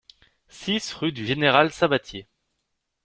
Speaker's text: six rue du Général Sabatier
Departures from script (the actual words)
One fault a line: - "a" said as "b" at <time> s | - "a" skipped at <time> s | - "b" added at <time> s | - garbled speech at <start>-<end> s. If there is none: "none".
none